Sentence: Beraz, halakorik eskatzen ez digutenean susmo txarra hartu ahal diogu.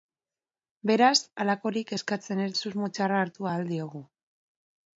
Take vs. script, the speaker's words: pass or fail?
fail